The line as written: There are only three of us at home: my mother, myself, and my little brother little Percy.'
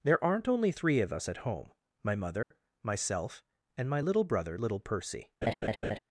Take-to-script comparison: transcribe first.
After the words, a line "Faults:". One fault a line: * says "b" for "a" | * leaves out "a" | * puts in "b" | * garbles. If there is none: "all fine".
There aren't only three of us at home: my mother, myself, and my little brother little Percy.'
Faults:
* says "aren't" for "are"